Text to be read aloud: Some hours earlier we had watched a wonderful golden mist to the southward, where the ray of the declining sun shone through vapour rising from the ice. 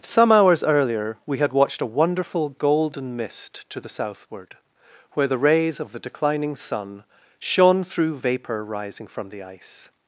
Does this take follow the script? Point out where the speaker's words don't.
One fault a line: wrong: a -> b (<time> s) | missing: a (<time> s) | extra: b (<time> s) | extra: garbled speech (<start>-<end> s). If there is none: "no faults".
wrong: ray -> rays (5.4 s)